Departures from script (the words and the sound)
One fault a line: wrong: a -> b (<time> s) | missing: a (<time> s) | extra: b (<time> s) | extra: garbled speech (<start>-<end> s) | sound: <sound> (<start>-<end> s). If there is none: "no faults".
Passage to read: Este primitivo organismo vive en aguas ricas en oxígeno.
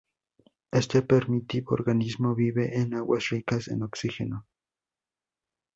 no faults